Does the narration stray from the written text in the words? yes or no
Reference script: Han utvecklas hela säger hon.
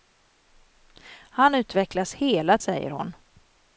no